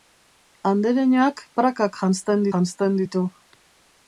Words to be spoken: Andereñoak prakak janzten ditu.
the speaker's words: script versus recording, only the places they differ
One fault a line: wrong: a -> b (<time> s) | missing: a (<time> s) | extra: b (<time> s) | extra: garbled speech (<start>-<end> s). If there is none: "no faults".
extra: janzten (2.5 s)